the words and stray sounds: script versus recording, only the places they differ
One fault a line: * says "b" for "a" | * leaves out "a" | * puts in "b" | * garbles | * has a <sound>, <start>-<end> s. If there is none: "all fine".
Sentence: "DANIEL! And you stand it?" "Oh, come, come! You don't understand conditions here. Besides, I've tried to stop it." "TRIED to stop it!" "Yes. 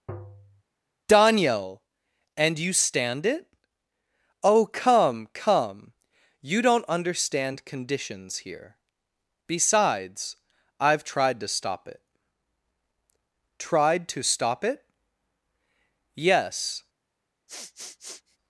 * has a tap, 0.1-0.6 s
* has a sniff, 17.5-18.4 s